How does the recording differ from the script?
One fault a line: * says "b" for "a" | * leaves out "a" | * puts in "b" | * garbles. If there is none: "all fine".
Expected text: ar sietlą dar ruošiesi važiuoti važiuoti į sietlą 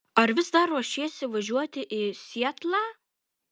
* says "vis" for "sietlą"
* leaves out "važiuoti"